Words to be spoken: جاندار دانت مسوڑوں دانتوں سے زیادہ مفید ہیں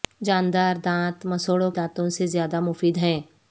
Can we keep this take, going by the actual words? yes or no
yes